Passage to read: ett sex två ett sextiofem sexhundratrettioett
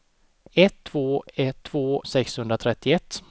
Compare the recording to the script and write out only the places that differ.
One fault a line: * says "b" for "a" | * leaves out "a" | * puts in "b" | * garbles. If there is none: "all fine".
* leaves out "sex"
* says "två" for "sextiofem"